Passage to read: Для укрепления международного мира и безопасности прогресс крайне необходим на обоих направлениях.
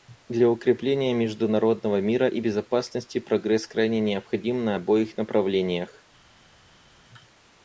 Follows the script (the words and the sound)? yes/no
yes